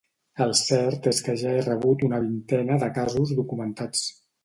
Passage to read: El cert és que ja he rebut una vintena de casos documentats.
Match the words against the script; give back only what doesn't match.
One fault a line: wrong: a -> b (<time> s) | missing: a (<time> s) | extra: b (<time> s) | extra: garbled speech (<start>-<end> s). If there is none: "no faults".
no faults